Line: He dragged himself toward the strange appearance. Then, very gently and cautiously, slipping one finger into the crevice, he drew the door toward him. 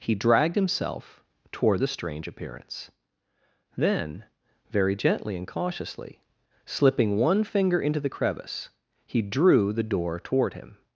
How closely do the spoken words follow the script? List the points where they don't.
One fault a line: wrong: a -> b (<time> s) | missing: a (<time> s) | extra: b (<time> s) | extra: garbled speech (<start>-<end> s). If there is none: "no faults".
no faults